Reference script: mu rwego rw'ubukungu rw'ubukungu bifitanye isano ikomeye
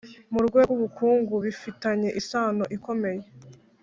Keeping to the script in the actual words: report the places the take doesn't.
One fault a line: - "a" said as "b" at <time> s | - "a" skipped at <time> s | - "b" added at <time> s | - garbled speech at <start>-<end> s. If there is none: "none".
- "rw'ubukungu" skipped at 1.3 s